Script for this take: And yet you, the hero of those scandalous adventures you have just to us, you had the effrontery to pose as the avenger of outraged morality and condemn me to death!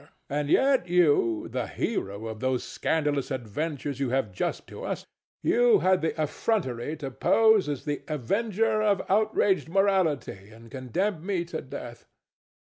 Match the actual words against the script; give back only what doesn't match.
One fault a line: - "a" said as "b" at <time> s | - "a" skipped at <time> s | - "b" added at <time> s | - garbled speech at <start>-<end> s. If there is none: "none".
none